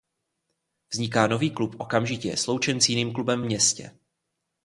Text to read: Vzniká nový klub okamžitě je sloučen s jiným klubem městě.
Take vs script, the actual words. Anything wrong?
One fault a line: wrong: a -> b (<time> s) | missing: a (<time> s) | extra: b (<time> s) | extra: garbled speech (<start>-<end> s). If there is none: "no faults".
no faults